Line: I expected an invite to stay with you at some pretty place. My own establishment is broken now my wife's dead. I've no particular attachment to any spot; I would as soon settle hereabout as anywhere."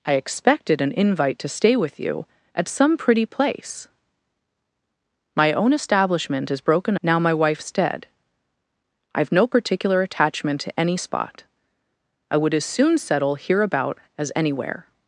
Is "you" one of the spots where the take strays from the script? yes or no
no